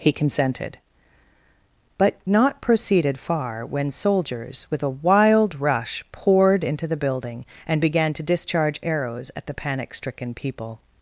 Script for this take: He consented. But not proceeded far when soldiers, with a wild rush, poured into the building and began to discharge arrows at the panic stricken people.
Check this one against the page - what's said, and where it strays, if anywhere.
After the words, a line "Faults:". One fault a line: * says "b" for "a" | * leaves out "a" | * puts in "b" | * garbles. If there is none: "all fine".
He consented. But not proceeded far when soldiers, with a wild rush, poured into the building and began to discharge arrows at the panic stricken people.
Faults:
all fine